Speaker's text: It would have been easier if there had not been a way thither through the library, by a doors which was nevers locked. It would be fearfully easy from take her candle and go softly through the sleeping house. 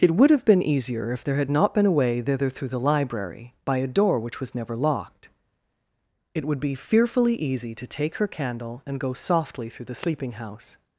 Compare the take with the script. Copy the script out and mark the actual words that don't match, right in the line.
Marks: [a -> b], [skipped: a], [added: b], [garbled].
It would have been easier if there had not been a way thither through the library, by a [doors -> door] which was [nevers -> never] locked. It would be fearfully easy [from -> to] take her candle and go softly through the sleeping house.